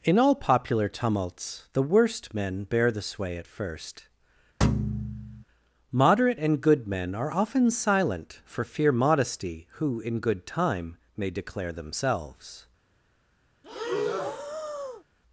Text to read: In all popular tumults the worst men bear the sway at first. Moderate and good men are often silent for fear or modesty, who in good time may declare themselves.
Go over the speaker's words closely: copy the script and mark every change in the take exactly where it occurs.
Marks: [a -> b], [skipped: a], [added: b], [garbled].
In all popular tumults the worst men bear the sway at first. Moderate and good men are often silent for fear [skipped: or] modesty, who in good time may declare themselves.